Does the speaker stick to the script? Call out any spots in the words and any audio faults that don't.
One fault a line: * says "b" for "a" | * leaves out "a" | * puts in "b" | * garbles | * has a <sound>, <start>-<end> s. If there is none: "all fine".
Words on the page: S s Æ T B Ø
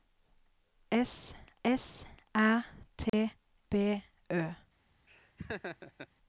* has a dropout, 3.1-3.1 s
* has a laugh, 5.1-6.1 s